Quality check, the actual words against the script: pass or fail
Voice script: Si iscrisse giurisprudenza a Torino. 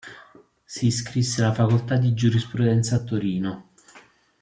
fail